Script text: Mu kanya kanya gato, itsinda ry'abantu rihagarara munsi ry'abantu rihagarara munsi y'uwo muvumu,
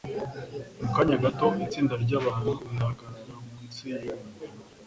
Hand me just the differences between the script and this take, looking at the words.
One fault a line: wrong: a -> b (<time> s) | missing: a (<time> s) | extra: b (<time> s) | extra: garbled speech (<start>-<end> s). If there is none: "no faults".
missing: kanya (1.2 s)
missing: ry'abantu rihagarara munsi (3.8 s)